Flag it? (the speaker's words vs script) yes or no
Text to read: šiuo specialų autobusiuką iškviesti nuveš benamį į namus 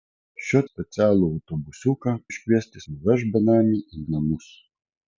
no